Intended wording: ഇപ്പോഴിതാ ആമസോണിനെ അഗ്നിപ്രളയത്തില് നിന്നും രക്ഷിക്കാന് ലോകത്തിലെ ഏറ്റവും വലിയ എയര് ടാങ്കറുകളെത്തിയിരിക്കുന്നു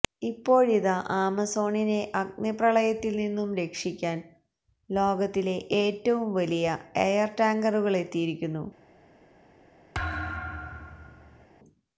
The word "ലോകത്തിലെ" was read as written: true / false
true